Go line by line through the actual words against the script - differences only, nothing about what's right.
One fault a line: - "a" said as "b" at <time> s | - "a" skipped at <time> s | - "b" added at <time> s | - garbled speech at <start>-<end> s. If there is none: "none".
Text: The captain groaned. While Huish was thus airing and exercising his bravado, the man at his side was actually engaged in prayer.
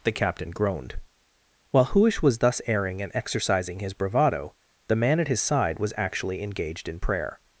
none